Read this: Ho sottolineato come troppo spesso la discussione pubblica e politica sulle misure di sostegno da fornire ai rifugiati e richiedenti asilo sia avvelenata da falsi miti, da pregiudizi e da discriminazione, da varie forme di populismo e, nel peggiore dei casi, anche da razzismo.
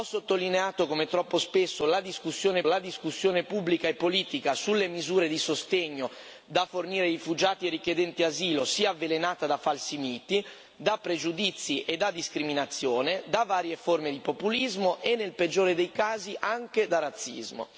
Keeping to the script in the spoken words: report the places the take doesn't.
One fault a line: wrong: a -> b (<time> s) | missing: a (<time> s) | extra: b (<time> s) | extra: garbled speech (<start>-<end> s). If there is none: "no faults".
extra: la discussione (2.6 s)